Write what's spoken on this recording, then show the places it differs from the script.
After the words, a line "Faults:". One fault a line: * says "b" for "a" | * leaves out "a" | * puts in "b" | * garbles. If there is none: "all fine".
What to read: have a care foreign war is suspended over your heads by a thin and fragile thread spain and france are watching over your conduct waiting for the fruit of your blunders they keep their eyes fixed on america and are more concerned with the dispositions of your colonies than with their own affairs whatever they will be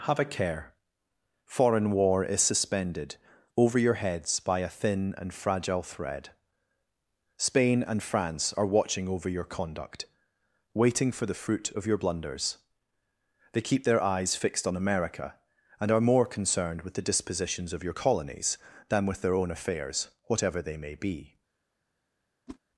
have a care foreign war is suspended over your heads by a thin and fragile thread spain and france are watching over your conduct waiting for the fruit of your blunders they keep their eyes fixed on america and are more concerned with the dispositions of your colonies than with their own affairs whatever they may be
Faults:
* says "may" for "will"